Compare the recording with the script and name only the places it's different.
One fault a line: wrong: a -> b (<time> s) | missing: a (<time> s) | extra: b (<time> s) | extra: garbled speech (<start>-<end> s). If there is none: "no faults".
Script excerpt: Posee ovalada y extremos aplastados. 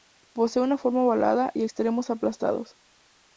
extra: una forma (0.6 s)